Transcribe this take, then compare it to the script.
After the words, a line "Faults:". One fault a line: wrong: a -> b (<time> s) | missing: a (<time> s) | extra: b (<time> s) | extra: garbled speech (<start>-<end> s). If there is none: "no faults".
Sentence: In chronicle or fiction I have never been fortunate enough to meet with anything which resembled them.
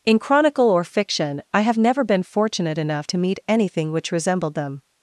In chronicle or fiction I have never been fortunate enough to meet anything which resembled them.
Faults:
missing: with (3.4 s)